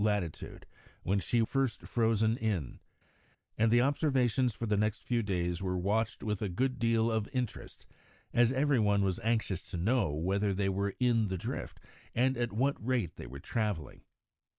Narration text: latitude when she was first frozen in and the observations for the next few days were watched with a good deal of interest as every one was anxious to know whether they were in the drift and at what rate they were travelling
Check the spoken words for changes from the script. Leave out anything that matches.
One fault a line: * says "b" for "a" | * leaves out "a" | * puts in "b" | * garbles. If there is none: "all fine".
* leaves out "was"